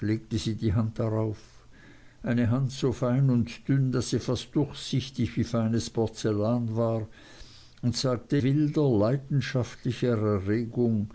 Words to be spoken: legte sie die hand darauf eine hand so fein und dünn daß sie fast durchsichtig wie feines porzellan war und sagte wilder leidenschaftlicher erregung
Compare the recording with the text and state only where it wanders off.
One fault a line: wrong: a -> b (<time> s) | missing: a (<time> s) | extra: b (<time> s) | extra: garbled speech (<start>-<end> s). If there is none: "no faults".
no faults